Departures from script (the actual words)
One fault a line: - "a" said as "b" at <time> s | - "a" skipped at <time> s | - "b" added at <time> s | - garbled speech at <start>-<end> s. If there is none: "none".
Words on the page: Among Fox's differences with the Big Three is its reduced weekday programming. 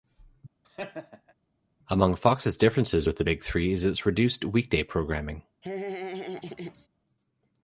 none